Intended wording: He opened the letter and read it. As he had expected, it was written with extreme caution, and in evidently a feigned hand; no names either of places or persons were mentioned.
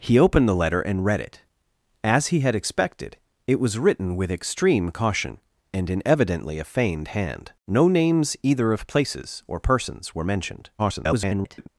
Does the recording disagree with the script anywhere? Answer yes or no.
yes